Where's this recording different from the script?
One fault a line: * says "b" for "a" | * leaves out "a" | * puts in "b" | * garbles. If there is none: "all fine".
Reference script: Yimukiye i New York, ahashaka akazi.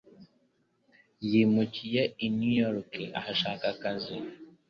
all fine